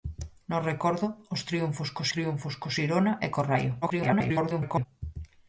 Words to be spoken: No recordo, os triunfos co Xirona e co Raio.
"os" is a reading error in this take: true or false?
false